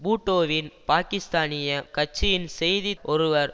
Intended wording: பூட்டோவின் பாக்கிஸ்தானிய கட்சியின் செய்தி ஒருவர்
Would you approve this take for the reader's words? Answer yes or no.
yes